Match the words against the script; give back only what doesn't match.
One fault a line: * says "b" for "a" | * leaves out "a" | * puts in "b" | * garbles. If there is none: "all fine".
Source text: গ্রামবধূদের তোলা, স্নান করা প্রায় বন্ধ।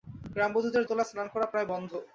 all fine